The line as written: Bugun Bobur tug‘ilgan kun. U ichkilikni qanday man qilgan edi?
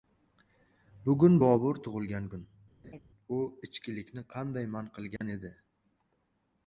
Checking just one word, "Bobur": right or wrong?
right